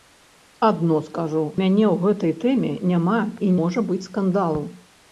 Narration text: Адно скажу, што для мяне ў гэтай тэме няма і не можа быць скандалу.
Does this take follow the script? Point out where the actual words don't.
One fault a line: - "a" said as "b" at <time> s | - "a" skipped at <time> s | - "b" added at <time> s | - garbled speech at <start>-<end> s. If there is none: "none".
- "што для" skipped at 1.4 s
- "не" skipped at 3.5 s